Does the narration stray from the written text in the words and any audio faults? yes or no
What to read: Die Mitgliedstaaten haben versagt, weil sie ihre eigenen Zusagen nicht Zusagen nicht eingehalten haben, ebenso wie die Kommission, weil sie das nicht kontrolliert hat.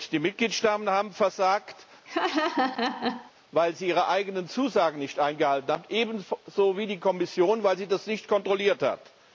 yes